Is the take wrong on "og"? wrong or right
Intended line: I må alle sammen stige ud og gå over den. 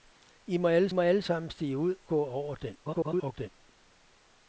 wrong